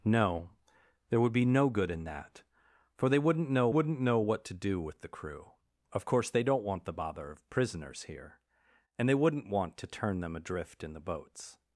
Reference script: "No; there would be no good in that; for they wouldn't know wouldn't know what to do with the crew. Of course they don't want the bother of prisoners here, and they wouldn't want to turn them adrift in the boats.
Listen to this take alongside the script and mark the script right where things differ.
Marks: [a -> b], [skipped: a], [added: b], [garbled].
"No; there would be no good in that; for they wouldn't know wouldn't know what to do with the crew. Of course they don't want the bother of prisoners here, and they wouldn't want to turn them adrift in the boats.